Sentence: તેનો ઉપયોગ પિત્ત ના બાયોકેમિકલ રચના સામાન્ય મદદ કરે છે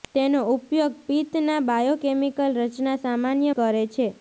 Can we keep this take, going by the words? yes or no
no